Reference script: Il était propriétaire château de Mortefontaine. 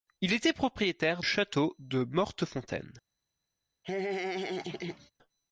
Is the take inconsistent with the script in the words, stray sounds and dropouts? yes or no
yes